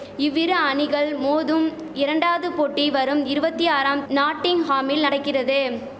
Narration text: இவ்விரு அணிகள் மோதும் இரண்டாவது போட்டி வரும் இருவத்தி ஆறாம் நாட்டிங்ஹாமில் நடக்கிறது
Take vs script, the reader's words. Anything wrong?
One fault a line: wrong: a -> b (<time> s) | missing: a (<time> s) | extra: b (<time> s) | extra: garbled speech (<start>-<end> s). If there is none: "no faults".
no faults